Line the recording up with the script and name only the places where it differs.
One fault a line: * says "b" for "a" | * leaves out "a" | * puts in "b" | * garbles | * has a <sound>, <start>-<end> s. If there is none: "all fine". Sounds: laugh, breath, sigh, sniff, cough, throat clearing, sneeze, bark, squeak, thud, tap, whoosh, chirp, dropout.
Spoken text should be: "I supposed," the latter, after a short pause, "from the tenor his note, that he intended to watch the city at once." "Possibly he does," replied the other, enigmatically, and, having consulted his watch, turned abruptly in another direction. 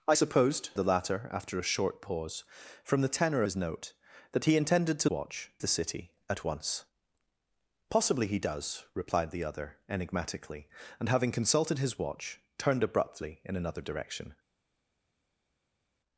all fine